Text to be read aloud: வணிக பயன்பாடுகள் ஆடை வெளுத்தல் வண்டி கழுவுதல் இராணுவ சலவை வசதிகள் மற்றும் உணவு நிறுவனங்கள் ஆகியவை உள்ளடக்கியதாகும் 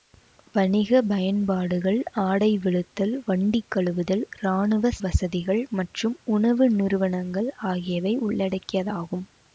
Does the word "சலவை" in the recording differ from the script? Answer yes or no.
yes